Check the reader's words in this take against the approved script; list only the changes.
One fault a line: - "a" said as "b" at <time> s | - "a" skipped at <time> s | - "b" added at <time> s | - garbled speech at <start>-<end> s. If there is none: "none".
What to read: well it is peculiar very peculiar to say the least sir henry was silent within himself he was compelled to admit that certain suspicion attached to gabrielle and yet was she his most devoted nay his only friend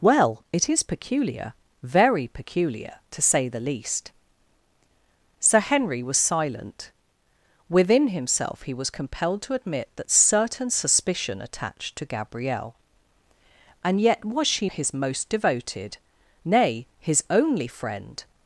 none